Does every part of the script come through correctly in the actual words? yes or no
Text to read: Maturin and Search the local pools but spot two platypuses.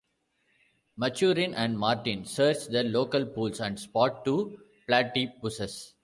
no